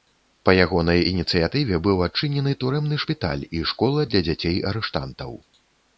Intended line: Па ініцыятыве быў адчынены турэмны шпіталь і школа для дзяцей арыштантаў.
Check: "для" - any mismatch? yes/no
no